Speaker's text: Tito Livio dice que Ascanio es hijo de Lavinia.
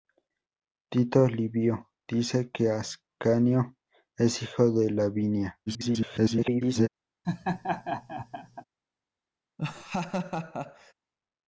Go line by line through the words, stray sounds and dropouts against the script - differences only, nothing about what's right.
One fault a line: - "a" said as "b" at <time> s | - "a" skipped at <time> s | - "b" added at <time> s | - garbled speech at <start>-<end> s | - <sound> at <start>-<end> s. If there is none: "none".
- garbled speech at 5.7-6.9 s
- laugh at 7.2-8.6 s
- laugh at 9.6-10.9 s